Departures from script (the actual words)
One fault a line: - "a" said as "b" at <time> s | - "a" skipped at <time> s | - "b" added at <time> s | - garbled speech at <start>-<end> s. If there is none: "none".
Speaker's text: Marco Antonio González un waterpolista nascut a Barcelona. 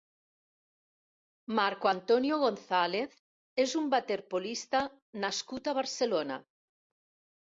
- "és" added at 3.6 s